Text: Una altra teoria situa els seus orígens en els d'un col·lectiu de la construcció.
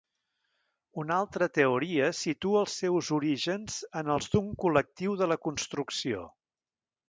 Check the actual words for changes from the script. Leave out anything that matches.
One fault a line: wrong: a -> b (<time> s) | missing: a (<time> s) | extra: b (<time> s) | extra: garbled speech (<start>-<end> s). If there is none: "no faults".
no faults